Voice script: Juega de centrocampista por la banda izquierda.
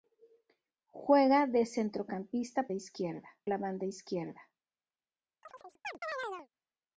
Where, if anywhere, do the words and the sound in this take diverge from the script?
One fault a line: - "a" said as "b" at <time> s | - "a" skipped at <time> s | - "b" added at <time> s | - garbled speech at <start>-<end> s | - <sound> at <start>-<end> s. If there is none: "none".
- "por" said as "izquierda" at 2.7 s
- chirp at 5.4-6.5 s